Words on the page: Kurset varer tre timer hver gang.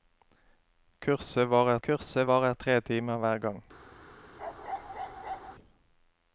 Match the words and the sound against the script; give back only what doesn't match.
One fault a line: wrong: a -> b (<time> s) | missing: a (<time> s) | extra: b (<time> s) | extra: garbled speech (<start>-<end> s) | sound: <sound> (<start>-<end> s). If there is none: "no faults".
extra: kurset varer (1.9 s)
sound: bark (4.4-5.5 s)